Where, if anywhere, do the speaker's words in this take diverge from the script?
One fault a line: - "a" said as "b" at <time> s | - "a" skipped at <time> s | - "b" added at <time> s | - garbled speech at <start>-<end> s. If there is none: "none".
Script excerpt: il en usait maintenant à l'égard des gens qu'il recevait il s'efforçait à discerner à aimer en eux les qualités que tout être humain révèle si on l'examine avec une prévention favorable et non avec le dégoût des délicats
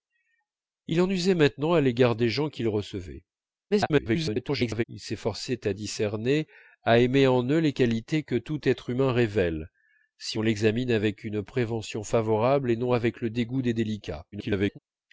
- garbled speech at 3.7-4.8 s
- garbled speech at 14.3-14.8 s